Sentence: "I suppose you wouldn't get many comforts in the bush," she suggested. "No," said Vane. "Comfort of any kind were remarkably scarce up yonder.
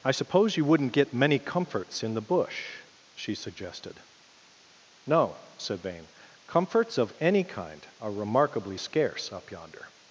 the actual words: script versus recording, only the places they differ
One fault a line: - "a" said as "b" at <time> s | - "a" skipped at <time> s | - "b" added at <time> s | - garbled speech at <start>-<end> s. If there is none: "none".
- "Comfort" said as "Comforts" at 6.5 s
- "were" said as "are" at 8.0 s